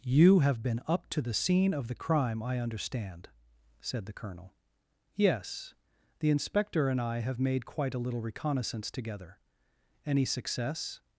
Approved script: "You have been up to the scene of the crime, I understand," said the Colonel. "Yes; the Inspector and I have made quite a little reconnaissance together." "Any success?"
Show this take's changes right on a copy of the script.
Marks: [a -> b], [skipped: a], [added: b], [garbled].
"You have been up to the scene of the crime, I understand," said the Colonel. "Yes; the Inspector and I have made quite a little reconnaissance together." "Any success?"